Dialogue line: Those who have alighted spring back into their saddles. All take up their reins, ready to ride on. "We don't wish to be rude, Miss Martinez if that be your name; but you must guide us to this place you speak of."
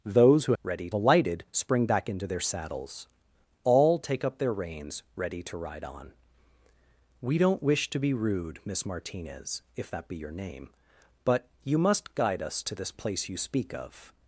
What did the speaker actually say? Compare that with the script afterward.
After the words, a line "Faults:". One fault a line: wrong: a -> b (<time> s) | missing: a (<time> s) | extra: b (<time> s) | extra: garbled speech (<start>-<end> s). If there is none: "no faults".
Those who ready alighted spring back into their saddles. All take up their reins, ready to ride on. "We don't wish to be rude, Miss Martinez if that be your name; but you must guide us to this place you speak of."
Faults:
wrong: have -> ready (0.6 s)